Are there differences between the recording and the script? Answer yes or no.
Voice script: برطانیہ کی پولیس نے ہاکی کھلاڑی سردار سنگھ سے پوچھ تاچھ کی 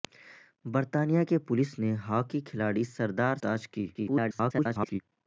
yes